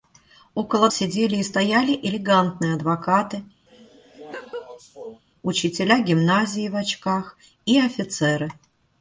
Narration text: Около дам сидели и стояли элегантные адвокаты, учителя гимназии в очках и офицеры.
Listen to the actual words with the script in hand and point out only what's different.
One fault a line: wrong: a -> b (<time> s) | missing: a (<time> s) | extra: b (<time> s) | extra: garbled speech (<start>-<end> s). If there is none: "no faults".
missing: дам (0.9 s)